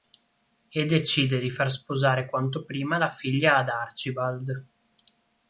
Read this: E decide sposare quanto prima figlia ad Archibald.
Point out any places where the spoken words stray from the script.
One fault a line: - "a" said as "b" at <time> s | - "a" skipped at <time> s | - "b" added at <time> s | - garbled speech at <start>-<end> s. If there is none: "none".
- "di far" added at 1.4 s
- "la" added at 3.0 s